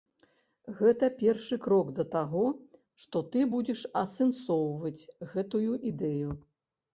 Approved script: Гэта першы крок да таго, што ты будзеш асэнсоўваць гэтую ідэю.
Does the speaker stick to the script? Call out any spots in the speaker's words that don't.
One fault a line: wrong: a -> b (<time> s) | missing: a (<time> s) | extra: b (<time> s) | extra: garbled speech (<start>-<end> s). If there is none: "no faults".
no faults